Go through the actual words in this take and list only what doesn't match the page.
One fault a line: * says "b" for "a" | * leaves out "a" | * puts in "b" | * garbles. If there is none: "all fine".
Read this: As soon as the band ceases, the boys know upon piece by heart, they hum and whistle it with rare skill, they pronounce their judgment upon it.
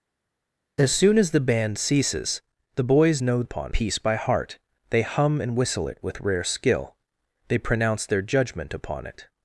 all fine